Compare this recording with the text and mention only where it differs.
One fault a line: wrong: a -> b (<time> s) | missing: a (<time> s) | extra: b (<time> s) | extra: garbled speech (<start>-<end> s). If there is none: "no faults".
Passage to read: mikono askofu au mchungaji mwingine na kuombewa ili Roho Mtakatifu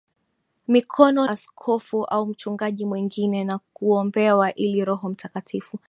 no faults